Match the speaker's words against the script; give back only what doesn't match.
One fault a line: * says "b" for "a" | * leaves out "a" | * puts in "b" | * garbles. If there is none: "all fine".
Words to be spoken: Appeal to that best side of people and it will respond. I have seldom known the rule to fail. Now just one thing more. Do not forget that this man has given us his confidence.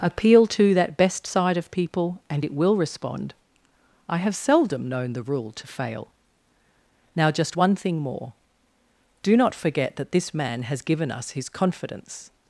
all fine